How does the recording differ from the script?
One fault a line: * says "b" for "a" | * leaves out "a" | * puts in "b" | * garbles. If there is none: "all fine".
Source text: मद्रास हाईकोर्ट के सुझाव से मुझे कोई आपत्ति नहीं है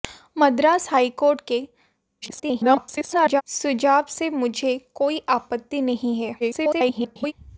* garbles
* garbles